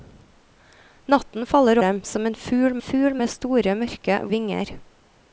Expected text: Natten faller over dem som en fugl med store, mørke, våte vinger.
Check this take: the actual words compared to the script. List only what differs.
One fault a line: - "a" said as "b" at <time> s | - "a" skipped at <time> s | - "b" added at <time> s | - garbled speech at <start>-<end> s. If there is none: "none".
- "over" skipped at 1.8 s
- "fugl" added at 2.8 s
- "våte" skipped at 4.2 s